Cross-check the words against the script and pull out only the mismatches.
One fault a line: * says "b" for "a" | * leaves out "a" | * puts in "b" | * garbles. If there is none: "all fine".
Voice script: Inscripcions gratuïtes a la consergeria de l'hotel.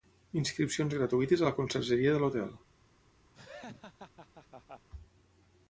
all fine